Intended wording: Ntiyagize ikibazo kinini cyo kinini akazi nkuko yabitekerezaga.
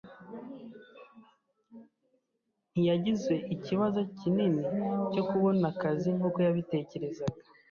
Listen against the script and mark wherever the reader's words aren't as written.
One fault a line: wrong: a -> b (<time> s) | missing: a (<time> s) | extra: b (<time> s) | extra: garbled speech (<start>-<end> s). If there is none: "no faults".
wrong: kinini -> kubona (5.3 s)